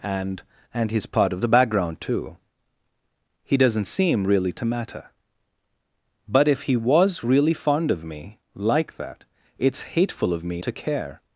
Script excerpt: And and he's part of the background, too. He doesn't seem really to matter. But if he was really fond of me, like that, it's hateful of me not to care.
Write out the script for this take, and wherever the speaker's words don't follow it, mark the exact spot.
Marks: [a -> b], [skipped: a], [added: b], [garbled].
And and he's part of the background, too. He doesn't seem really to matter. But if he was really fond of me, like that, it's hateful of me [skipped: not] to care.